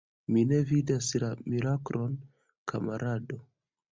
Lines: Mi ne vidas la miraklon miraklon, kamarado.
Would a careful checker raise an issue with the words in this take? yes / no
yes